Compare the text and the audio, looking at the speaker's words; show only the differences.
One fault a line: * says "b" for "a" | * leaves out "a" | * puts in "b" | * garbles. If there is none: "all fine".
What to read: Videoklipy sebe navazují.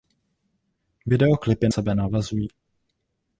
all fine